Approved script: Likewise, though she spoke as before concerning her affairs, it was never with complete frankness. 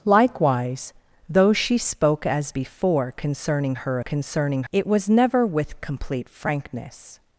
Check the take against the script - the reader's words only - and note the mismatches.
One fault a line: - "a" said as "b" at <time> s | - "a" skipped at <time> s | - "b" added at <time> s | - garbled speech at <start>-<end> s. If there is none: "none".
- "affairs" said as "concerning" at 4.0 s